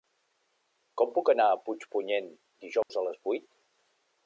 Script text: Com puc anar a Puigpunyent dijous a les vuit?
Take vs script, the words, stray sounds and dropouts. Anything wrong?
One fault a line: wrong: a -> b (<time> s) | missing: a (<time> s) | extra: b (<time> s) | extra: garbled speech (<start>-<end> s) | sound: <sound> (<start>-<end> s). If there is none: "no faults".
sound: dropout (2.8-2.9 s)